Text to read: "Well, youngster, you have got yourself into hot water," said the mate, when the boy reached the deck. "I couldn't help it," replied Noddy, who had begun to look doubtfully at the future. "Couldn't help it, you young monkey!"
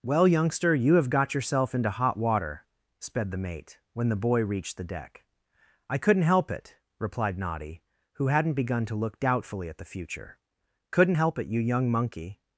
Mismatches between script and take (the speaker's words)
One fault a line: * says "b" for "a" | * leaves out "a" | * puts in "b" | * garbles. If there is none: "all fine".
* says "sped" for "said"
* says "hadn't" for "had"